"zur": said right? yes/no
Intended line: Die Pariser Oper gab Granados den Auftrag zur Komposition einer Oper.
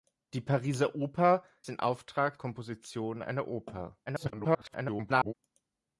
no